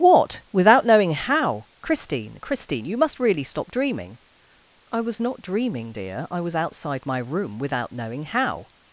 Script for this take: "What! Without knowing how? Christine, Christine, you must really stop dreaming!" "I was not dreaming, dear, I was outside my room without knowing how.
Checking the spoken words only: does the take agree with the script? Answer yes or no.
yes